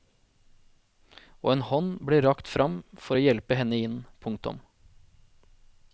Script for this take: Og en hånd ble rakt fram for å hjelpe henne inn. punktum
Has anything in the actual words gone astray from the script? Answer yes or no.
no